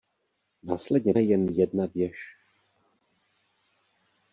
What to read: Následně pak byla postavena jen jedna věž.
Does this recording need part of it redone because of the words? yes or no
yes